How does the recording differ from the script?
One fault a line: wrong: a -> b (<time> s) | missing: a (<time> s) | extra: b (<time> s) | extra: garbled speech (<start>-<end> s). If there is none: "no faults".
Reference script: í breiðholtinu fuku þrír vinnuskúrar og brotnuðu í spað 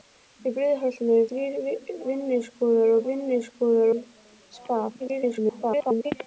missing: fuku (1.2 s)
wrong: brotnuðu -> vinnuskúrar (3.1 s)
extra: garbled speech (5.0-6.1 s)